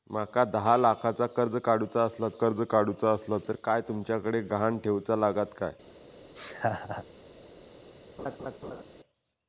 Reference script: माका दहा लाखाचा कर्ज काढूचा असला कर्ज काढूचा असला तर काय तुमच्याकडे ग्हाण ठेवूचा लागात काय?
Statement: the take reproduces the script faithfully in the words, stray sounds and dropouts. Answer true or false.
false